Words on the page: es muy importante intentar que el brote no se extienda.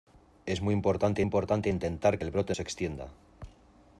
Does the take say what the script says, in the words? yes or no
no